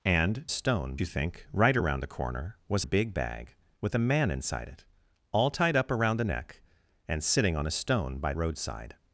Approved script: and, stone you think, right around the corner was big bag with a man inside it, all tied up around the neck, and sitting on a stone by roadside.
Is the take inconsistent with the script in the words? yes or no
no